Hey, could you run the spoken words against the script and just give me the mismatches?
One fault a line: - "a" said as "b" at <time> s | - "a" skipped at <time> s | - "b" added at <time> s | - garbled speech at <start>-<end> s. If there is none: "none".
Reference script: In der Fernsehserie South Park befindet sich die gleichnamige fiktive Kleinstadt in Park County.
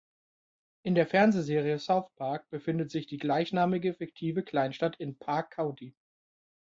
none